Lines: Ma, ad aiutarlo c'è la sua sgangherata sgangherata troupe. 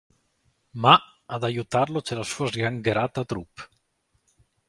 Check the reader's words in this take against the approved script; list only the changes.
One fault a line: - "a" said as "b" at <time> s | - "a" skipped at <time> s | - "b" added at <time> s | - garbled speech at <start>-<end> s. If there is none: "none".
- "sgangherata" skipped at 3.2 s